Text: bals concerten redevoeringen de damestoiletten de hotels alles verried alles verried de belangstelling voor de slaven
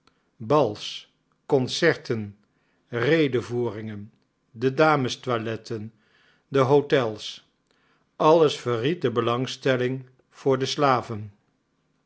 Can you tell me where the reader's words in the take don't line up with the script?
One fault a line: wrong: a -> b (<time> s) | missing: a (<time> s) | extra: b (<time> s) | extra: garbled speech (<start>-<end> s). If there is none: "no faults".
missing: alles verried (9.0 s)